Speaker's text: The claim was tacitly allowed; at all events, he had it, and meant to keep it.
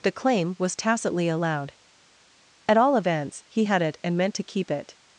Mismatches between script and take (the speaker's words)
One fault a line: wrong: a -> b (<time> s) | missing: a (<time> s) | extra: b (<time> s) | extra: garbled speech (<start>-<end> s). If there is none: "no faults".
no faults